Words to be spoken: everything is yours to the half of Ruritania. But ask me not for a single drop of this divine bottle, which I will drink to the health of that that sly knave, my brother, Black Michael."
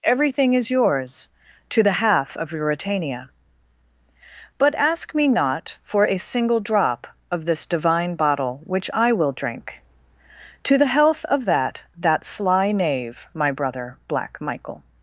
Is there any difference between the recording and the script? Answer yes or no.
no